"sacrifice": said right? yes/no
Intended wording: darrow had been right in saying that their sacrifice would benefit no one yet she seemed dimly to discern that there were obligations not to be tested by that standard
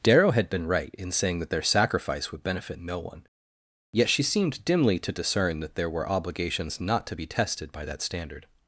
yes